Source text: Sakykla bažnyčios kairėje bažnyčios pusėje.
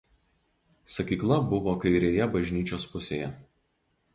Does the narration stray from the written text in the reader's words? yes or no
yes